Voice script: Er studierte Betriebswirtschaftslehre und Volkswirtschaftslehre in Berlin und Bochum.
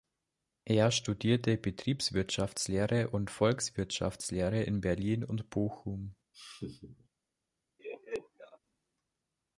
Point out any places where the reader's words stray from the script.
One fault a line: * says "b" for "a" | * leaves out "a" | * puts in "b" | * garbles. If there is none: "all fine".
all fine